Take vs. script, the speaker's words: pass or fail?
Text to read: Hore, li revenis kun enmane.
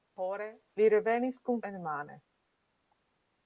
pass